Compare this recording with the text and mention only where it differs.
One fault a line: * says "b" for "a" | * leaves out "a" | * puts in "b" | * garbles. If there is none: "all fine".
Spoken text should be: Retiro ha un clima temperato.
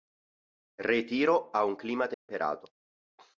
all fine